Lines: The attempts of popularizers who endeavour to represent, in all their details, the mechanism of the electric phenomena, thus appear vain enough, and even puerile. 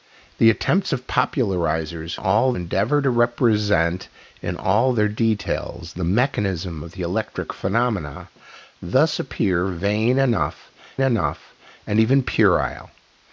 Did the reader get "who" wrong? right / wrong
wrong